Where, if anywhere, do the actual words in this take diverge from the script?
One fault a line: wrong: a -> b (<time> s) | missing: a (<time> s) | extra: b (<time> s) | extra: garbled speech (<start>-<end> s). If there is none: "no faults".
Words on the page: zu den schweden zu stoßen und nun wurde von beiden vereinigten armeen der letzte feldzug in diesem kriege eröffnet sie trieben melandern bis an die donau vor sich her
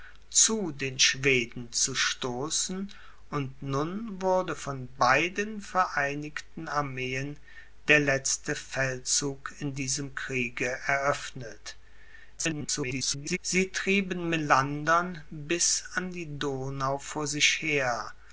extra: garbled speech (12.4-13.4 s)